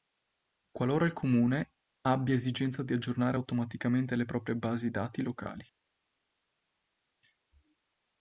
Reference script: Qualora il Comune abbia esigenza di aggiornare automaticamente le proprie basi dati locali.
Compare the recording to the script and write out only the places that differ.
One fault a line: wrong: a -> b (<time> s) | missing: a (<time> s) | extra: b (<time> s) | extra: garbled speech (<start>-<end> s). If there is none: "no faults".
no faults